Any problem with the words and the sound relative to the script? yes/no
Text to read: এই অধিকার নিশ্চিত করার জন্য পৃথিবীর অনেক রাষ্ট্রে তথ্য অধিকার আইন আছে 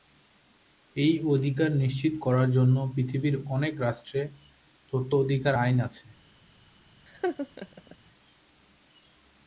yes